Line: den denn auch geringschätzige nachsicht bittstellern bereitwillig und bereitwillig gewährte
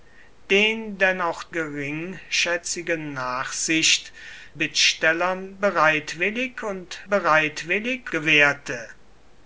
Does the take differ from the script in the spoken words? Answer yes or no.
no